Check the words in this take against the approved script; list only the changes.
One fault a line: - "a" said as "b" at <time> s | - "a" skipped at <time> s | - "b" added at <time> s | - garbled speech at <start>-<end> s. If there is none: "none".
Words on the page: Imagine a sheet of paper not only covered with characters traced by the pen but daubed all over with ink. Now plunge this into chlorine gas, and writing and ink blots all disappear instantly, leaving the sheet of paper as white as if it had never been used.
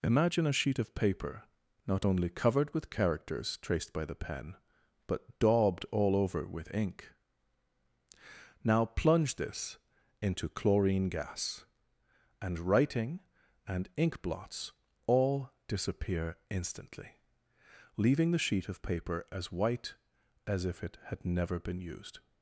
none